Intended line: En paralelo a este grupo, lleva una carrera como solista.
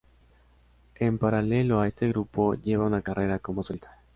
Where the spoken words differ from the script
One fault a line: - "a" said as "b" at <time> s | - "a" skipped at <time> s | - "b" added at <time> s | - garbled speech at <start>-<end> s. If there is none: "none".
none